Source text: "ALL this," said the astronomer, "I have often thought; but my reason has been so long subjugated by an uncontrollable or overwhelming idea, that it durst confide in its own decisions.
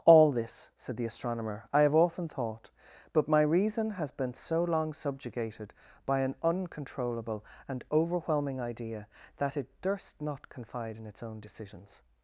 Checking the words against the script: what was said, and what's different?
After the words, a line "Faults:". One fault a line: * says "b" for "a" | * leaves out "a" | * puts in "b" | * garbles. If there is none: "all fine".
"ALL this," said the astronomer, "I have often thought; but my reason has been so long subjugated by an uncontrollable and overwhelming idea, that it durst not confide in its own decisions.
Faults:
* says "and" for "or"
* puts in "not"